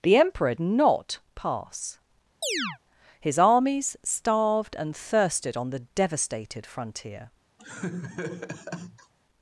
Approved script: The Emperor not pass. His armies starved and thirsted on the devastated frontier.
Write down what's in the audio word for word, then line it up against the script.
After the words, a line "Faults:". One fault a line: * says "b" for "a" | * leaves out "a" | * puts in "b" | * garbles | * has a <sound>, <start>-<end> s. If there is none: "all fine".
The Emperor not pass. His armies starved and thirsted on the devastated frontier.
Faults:
* has a chirp, 2.4-2.8 s
* has a laugh, 7.6-9.1 s